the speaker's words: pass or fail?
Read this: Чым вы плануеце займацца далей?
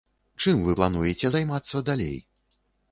pass